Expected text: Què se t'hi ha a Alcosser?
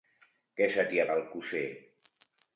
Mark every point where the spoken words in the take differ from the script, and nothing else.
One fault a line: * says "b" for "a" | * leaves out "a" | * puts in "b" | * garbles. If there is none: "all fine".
all fine